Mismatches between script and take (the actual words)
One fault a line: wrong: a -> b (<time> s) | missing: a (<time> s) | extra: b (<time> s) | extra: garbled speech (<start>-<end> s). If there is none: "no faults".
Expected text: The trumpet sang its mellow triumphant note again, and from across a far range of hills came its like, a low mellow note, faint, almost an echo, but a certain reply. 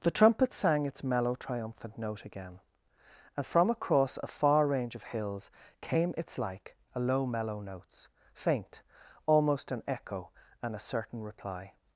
wrong: note -> notes (7.6 s)
wrong: but -> and (10.6 s)